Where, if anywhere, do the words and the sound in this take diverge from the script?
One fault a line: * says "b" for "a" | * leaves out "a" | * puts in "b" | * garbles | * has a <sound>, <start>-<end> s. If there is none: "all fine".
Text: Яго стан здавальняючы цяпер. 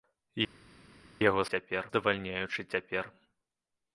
* says "цяпер" for "стан"